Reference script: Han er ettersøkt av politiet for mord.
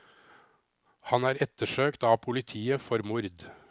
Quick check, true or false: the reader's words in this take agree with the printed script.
true